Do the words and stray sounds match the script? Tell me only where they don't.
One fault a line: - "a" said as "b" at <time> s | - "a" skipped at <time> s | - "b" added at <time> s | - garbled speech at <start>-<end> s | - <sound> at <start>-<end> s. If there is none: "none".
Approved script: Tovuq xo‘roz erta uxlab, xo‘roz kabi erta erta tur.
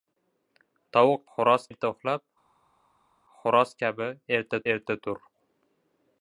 none